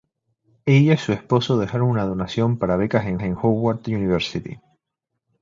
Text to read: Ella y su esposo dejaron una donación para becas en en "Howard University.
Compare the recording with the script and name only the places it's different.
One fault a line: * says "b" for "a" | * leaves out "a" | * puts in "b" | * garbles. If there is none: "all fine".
all fine